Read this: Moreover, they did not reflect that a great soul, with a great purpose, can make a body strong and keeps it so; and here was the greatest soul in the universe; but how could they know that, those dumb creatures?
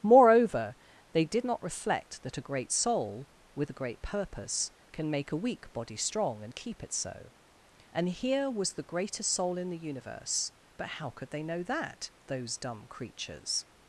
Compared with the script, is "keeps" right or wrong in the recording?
wrong